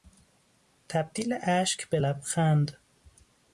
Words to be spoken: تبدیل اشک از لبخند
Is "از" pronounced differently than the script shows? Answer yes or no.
yes